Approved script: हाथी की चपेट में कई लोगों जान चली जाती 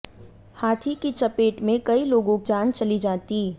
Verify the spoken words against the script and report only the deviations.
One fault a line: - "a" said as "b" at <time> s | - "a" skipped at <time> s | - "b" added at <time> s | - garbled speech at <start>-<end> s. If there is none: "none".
none